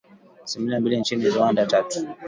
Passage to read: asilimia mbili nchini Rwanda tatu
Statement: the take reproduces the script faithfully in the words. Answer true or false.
true